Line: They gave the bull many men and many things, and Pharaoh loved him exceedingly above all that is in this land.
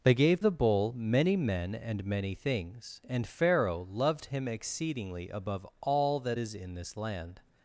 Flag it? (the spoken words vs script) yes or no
no